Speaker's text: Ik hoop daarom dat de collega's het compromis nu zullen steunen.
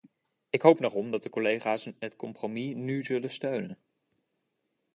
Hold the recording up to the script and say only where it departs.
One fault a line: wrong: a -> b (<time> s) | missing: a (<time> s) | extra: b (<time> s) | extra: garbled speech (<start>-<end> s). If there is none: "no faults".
no faults